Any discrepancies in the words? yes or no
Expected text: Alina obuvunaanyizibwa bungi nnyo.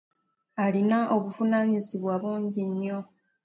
no